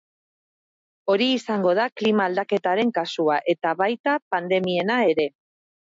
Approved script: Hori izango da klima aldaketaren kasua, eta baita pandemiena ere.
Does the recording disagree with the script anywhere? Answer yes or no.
no